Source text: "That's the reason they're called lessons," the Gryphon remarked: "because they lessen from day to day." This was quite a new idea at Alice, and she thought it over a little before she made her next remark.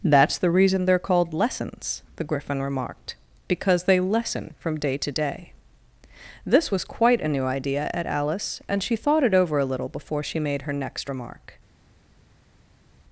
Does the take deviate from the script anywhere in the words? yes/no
no